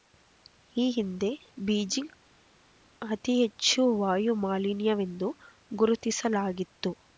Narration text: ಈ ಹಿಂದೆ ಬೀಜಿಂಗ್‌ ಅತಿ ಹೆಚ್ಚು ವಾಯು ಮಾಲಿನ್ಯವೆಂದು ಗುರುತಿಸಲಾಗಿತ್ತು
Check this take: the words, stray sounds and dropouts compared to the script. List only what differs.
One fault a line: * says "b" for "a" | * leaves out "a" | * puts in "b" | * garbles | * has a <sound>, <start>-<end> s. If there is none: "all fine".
all fine